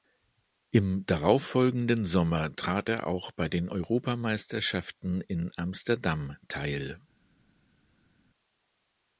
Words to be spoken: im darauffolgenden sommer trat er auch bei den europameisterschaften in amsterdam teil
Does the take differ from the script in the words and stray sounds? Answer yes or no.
no